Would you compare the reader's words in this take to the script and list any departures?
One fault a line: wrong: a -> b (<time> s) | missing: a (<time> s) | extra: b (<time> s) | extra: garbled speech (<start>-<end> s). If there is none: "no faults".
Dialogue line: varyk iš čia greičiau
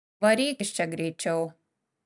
no faults